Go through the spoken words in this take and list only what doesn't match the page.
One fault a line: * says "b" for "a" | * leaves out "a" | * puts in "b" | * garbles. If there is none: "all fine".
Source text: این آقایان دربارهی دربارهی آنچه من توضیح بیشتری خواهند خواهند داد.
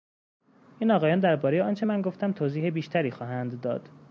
* leaves out "دربارهی"
* puts in "گفتم"
* leaves out "خواهند"